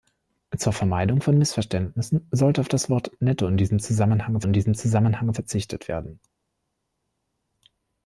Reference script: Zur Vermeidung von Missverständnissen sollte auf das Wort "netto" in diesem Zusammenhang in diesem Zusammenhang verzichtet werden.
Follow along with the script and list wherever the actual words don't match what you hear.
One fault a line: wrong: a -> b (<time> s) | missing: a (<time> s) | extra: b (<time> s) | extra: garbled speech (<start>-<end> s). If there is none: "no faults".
no faults